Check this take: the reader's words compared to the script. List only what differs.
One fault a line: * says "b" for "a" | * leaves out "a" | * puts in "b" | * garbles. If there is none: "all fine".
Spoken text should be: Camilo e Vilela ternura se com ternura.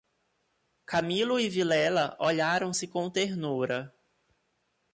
* says "olharam" for "ternura"